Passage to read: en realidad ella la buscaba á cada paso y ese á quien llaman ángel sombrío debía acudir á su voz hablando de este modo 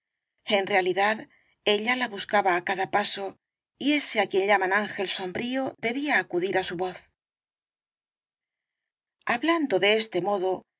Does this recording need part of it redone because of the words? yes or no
no